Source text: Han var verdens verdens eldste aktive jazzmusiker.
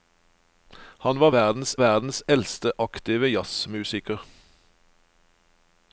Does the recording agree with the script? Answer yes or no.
yes